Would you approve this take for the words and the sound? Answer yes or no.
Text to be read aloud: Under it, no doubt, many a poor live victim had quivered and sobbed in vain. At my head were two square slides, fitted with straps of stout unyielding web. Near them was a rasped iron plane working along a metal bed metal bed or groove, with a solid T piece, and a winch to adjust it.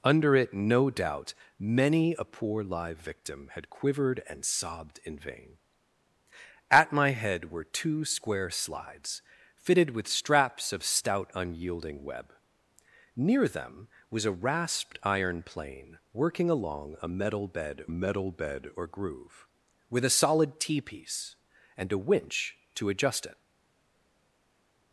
yes